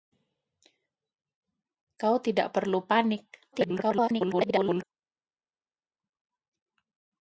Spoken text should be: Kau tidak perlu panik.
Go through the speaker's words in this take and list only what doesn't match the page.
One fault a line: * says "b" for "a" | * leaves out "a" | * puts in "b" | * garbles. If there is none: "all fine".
* garbles